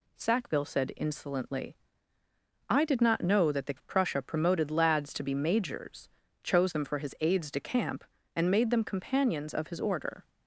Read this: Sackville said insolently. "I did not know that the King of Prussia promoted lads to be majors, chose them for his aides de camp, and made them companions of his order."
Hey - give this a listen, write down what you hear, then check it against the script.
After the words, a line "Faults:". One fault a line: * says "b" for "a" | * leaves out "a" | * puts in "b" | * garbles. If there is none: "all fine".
Sackville said insolently. "I did not know that the Of Prussia promoted lads to be majors, chose them for his aides de camp, and made them companions of his order."
Faults:
* leaves out "King"